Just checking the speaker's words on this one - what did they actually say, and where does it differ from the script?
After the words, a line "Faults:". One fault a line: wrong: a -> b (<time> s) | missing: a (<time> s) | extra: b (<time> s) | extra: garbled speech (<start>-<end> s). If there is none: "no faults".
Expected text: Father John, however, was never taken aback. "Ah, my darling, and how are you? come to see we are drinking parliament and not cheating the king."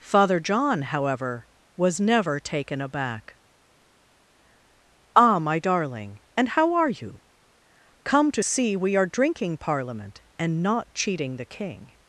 Father John, however, was never taken aback. "Ah, my darling, and how are you? come to see we are drinking parliament and not cheating the king."
Faults:
no faults